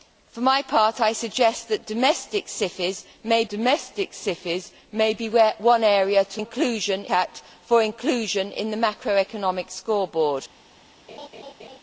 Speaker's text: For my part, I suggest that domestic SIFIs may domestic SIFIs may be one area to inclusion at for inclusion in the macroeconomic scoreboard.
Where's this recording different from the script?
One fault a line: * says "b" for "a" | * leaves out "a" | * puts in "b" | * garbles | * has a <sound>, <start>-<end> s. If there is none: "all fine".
* has a laugh, 11.1-11.8 s